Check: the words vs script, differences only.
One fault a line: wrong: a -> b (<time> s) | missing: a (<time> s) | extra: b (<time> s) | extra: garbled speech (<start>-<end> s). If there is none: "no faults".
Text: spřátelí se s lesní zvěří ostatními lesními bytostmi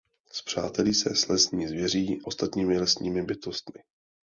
no faults